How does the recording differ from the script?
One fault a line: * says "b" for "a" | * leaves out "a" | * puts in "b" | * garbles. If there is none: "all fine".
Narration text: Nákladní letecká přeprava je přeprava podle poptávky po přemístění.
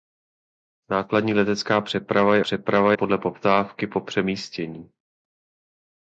all fine